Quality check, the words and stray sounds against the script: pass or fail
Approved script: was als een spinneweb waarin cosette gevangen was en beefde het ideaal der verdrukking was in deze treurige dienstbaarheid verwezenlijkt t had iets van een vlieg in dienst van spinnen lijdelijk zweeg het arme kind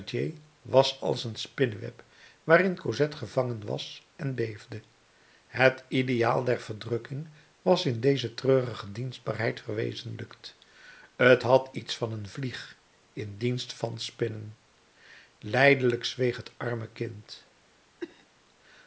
fail